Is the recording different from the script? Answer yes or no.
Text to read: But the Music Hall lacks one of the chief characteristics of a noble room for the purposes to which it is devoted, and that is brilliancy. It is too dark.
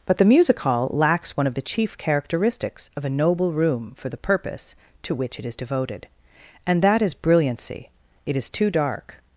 yes